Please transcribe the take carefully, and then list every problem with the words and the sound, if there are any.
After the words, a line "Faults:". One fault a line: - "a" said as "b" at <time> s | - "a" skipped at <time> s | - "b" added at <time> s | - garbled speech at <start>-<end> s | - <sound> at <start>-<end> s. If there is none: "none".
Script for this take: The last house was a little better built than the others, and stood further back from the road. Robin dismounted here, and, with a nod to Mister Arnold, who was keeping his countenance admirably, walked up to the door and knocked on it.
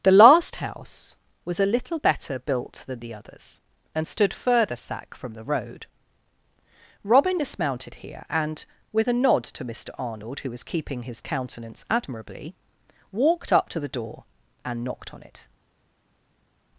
The last house was a little better built than the others, and stood further sack from the road. Robin dismounted here, and, with a nod to Mister Arnold, who was keeping his countenance admirably, walked up to the door and knocked on it.
Faults:
- "back" said as "sack" at 4.8 s